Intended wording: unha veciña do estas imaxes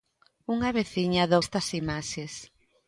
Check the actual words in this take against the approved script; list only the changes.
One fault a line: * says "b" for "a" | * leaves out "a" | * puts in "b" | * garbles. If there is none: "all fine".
all fine